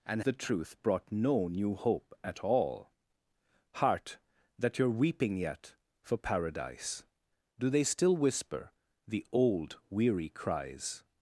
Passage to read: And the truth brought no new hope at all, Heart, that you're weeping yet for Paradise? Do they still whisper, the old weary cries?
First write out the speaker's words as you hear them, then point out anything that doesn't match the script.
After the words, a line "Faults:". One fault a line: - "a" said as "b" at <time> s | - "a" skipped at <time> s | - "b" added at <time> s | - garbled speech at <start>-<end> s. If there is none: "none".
And the truth brought no new hope at all, Heart, that you're weeping yet for Paradise? Do they still whisper, the old weary cries?
Faults:
none